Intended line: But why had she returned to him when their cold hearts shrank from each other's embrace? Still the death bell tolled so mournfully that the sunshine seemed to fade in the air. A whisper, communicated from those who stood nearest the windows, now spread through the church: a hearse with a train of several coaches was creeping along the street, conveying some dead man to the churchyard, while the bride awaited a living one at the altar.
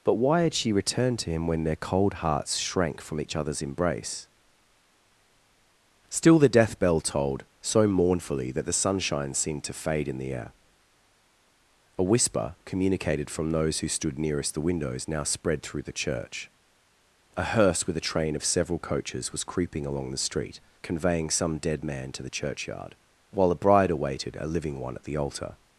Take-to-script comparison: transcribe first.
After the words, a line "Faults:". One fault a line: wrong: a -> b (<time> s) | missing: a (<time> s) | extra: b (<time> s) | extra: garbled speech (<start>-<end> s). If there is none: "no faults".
But why had she returned to him when their cold hearts shrank from each other's embrace? Still the death bell tolled so mournfully that the sunshine seemed to fade in the air. A whisper, communicated from those who stood nearest the windows, now spread through the church: a hearse with a train of several coaches was creeping along the street, conveying some dead man to the churchyard, while a bride awaited a living one at the altar.
Faults:
wrong: the -> a (23.5 s)